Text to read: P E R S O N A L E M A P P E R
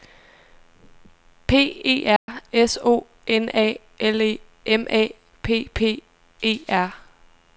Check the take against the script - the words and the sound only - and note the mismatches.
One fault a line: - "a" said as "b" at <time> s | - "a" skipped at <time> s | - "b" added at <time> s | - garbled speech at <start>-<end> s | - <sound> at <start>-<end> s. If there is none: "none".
- dropout at 2.2-2.3 s